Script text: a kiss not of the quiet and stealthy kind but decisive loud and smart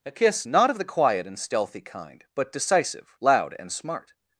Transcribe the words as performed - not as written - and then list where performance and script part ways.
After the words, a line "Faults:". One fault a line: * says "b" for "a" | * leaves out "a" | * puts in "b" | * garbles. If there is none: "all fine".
a kiss not of the quiet and stealthy kind but decisive loud and smart
Faults:
all fine